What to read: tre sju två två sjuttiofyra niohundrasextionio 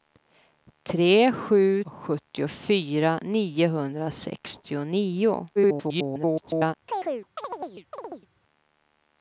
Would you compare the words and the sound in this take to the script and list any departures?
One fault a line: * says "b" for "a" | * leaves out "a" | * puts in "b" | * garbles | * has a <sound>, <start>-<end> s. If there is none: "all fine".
* leaves out "två två"
* garbles
* has a chirp, 6.9-8.3 s